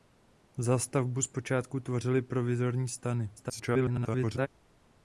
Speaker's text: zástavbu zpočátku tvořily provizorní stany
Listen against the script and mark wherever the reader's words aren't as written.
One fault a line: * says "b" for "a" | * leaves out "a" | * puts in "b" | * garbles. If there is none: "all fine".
* garbles